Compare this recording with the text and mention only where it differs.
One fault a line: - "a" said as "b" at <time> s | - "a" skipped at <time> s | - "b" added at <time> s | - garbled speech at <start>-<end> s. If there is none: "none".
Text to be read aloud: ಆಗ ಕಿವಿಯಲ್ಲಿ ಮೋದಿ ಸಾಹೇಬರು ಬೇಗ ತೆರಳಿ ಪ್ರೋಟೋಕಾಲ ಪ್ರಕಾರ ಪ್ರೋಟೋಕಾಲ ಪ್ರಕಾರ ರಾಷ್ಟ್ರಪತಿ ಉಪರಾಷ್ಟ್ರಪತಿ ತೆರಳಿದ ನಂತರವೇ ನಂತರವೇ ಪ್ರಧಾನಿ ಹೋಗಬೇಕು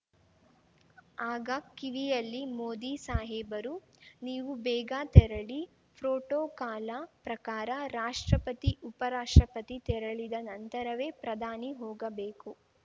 - "ನೀವು" added at 4.2 s
- "ಪ್ರೋಟೋಕಾಲ ಪ್ರಕಾರ" skipped at 7.7 s
- "ನಂತರವೇ" skipped at 11.1 s